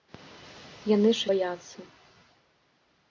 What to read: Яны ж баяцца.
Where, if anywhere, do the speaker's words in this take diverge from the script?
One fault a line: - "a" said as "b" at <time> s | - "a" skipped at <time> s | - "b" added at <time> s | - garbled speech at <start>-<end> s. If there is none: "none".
none